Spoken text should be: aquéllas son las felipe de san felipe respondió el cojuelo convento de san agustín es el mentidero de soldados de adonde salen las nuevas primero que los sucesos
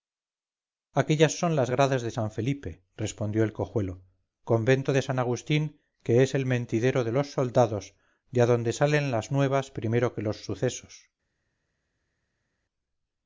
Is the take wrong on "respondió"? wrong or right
right